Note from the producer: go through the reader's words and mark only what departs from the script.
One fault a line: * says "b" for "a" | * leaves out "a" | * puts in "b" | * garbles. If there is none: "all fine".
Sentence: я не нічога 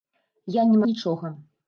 all fine